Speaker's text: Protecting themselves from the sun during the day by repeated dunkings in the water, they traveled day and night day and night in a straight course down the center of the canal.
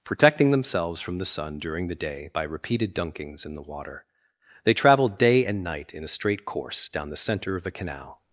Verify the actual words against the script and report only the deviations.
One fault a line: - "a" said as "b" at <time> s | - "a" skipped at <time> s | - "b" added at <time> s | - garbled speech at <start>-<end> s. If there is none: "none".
- "day and night" skipped at 5.9 s